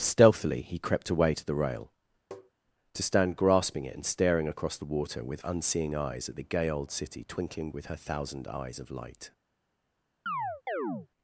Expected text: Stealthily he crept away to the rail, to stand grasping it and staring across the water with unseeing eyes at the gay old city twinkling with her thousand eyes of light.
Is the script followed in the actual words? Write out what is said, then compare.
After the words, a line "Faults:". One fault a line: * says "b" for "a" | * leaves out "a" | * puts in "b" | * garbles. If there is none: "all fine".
Stealthily he crept away to the rail, to stand grasping it and staring across the water with unseeing eyes at the gay old city twinkling with her thousand eyes of light.
Faults:
all fine